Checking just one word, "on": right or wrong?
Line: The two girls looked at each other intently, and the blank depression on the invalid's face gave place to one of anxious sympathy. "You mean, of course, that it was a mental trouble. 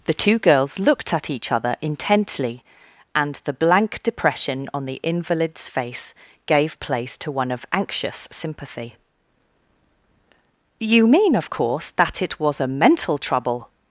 right